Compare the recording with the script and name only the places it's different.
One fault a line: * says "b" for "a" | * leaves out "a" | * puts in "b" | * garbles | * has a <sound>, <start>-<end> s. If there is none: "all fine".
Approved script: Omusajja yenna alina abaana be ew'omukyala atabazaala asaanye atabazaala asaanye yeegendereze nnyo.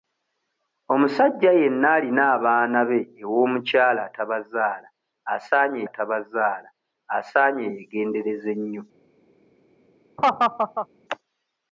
* has a laugh, 10.2-10.9 s